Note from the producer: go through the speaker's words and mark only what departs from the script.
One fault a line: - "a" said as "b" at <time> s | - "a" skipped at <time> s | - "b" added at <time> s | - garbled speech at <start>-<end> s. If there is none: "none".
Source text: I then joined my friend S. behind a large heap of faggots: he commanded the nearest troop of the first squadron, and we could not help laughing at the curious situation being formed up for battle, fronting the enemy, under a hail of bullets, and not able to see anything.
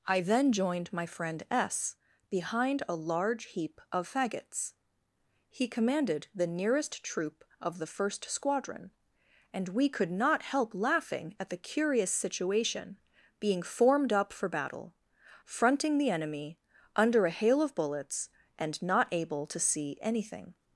none